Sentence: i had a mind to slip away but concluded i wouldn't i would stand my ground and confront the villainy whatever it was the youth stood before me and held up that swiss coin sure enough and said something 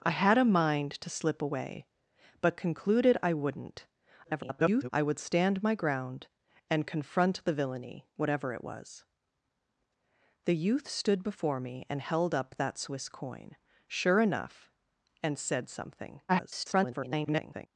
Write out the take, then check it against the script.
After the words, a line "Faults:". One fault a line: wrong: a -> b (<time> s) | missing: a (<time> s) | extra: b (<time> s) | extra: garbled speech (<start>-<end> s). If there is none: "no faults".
i had a mind to slip away but concluded i wouldn't [garbled] i would stand my ground and confront the villainy whatever it was the youth stood before me and held up that swiss coin sure enough and said something [garbled]
Faults:
extra: garbled speech (4.2-4.9 s)
extra: garbled speech (16.3-17.7 s)